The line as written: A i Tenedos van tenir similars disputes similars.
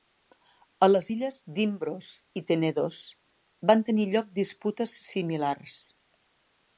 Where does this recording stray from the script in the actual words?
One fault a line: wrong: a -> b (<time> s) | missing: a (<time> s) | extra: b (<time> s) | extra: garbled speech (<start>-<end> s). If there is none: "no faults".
extra: les illes d'Imbros (0.9 s)
wrong: similars -> lloc (4.1 s)